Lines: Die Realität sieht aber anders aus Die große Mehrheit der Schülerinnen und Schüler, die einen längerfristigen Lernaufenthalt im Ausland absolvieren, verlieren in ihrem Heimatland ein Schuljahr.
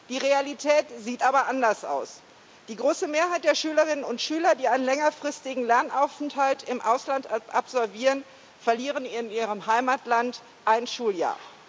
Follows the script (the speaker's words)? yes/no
yes